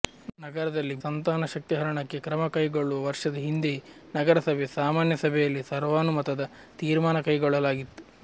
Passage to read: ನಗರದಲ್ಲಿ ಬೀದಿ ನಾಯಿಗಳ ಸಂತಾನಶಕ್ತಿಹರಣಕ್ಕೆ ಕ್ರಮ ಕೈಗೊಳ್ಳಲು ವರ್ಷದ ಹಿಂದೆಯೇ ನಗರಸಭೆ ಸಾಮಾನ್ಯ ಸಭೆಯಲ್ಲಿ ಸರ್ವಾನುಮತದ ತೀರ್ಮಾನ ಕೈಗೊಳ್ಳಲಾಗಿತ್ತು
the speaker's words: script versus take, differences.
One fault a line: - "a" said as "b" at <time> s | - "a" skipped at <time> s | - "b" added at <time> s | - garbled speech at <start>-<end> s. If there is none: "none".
- "ಬೀದಿ ನಾಯಿಗಳ" skipped at 0.9 s